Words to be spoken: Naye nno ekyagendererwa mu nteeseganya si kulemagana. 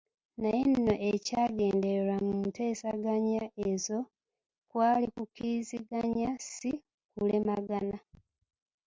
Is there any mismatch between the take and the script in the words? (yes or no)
yes